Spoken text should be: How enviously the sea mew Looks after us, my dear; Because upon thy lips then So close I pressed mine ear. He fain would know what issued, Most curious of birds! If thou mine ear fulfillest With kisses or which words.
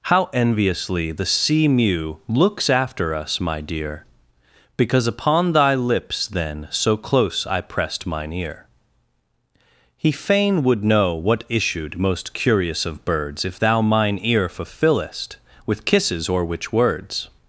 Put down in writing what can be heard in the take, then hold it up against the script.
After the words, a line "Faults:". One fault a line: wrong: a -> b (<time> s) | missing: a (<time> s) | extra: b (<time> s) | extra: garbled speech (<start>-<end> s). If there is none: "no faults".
How enviously the sea mew Looks after us, my dear; Because upon thy lips then So close I pressed mine ear. He fain would know what issued, Most curious of birds! If thou mine ear fulfillest With kisses or which words.
Faults:
no faults